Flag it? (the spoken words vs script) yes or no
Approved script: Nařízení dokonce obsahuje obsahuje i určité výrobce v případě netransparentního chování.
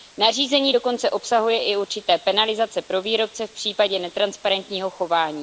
yes